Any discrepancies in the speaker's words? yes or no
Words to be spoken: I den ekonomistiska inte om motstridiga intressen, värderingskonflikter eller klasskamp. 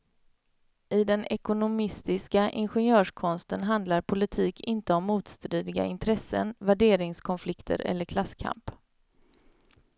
yes